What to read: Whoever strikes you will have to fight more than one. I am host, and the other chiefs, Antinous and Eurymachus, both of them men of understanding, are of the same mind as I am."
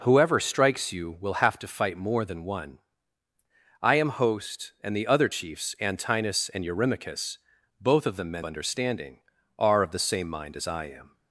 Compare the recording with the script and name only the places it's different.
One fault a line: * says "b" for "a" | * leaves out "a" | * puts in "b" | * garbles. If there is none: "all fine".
* leaves out "of"